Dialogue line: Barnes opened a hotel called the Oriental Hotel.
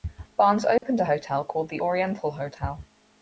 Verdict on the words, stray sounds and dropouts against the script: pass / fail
fail